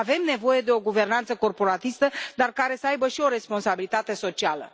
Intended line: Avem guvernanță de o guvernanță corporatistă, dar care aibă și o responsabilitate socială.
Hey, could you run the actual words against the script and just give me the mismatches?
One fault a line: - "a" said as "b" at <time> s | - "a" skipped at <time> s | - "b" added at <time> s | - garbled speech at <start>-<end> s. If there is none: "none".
- "guvernanță" said as "nevoie" at 0.2 s
- "să" added at 2.8 s